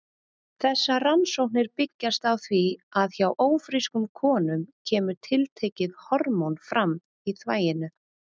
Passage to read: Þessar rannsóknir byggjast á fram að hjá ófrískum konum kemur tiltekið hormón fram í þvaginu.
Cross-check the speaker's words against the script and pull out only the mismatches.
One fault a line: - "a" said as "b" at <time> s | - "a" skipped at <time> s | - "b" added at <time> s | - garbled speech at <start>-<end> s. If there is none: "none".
- "fram" said as "því" at 2.4 s